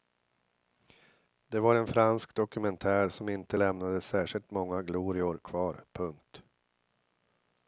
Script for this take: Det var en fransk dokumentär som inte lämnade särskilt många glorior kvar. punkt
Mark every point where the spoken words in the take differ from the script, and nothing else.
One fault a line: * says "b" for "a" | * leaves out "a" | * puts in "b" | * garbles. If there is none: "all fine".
all fine